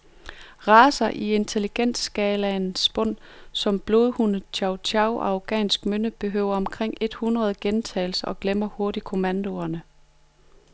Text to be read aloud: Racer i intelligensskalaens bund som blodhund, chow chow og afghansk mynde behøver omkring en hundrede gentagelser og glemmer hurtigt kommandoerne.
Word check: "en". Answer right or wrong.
wrong